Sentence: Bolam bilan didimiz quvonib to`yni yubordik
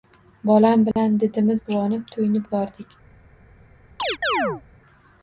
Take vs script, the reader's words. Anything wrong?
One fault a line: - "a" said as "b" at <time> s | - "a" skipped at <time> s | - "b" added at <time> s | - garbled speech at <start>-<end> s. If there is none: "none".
none